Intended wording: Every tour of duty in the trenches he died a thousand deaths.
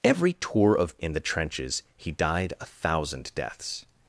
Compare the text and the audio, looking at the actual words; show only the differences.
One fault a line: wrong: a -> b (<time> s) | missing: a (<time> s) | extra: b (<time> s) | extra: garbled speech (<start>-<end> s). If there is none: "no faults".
missing: duty (1.0 s)